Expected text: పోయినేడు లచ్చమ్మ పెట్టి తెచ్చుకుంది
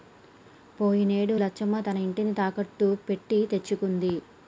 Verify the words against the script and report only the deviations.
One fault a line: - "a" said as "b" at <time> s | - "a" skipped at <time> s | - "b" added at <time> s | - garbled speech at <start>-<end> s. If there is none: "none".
- "తన ఇంటిని తాకట్టు" added at 1.8 s